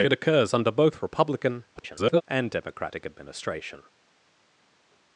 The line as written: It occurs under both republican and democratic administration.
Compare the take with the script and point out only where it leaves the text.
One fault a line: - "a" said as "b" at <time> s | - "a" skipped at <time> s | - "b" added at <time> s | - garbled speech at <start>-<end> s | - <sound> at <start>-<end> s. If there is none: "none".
- garbled speech at 1.8-2.2 s